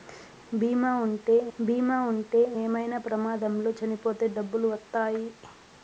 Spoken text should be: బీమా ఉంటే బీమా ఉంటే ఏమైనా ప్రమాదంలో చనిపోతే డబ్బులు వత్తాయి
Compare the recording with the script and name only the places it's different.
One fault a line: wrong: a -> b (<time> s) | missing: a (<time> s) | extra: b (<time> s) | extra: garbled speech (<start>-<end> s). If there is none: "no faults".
no faults